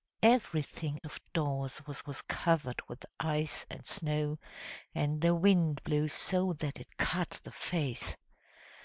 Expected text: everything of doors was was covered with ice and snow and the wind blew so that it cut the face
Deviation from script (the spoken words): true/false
false